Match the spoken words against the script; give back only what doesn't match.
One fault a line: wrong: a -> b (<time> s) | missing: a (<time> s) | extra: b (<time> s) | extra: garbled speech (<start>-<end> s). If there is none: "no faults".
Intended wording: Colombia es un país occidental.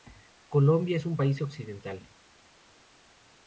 no faults